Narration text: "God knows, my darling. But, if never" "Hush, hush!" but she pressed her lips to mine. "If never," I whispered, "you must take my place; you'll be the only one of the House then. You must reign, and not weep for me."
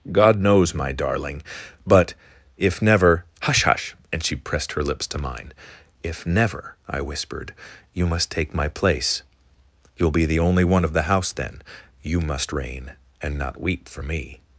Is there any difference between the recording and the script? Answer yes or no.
yes